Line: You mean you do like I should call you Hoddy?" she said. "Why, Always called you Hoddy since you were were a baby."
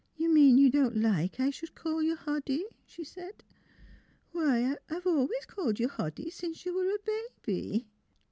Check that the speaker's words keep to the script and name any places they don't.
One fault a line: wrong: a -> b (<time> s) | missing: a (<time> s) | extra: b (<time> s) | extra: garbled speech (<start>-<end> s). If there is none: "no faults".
wrong: do -> don't (0.7 s)
extra: I've (4.9 s)
missing: were (6.9 s)